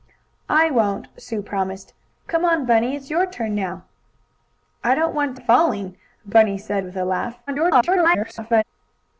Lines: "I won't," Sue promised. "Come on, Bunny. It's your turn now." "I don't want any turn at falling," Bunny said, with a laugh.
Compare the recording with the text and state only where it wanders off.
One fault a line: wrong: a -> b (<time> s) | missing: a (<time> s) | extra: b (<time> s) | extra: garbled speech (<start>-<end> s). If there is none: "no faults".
missing: any turn (5.4 s)
extra: garbled speech (7.5-8.6 s)